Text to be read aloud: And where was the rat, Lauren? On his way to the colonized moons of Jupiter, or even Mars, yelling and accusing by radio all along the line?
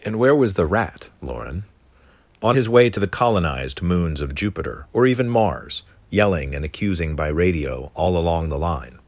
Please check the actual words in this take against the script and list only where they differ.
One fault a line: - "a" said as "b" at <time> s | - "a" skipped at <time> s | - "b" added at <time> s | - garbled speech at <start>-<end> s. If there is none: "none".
none